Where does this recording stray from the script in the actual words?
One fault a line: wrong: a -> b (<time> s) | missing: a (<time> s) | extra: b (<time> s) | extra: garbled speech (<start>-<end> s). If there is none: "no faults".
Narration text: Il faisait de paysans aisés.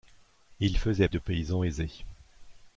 no faults